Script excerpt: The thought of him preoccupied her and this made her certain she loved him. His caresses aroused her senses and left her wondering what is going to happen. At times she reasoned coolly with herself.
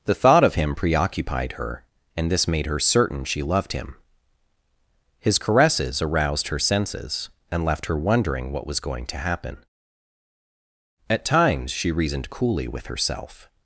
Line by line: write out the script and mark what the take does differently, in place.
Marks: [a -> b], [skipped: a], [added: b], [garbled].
The thought of him preoccupied her and this made her certain she loved him. His caresses aroused her senses and left her wondering what [is -> was] going to happen. At times she reasoned coolly with herself.